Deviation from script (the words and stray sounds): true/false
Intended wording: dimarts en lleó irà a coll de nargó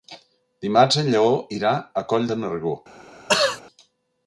true